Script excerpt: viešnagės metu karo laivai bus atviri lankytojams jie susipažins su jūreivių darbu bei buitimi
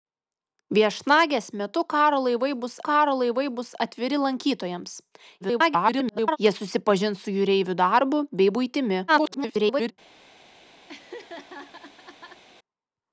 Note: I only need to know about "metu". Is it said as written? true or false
true